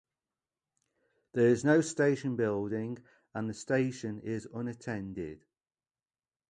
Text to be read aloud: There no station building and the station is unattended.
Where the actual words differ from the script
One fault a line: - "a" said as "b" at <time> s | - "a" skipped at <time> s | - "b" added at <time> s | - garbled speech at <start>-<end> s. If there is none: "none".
- "is" added at 1.5 s